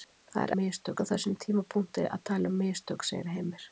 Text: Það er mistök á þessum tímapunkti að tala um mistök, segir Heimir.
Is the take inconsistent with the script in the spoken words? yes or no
no